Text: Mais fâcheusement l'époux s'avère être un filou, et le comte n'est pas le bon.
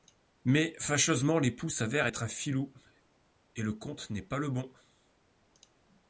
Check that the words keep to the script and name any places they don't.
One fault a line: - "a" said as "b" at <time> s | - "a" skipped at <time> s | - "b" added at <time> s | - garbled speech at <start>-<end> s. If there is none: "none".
none